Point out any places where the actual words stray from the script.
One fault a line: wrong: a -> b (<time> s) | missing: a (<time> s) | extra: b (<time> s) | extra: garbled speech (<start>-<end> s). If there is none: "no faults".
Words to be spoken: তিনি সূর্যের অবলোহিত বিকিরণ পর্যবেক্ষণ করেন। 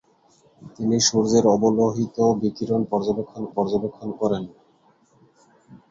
extra: পর্যবেক্ষণ (3.6 s)